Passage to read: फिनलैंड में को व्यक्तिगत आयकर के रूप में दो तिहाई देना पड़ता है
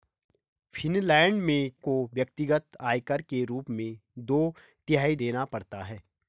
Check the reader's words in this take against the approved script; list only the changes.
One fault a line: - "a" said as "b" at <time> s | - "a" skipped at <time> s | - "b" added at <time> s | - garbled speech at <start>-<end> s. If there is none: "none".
none